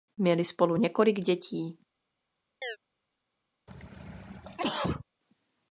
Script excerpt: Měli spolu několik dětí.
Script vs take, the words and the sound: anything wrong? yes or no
yes